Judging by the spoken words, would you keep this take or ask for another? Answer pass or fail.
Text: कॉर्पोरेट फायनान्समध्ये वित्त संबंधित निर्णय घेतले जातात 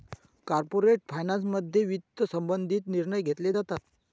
pass